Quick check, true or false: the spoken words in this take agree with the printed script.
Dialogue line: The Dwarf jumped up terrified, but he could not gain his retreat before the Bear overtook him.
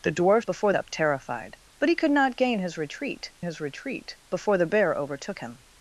false